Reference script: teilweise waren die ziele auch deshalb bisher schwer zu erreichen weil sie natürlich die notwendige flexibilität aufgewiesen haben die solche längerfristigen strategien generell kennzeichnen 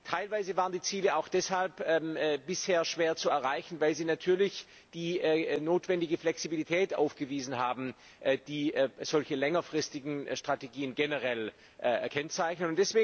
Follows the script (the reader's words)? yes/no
yes